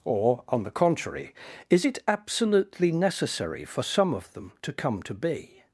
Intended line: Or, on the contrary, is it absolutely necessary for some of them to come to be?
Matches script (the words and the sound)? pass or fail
pass